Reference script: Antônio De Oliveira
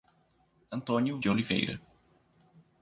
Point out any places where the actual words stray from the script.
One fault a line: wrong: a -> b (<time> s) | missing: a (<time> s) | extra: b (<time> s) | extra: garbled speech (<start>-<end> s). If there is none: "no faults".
no faults